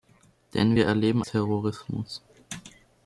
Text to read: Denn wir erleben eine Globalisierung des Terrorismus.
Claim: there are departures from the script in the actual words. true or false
true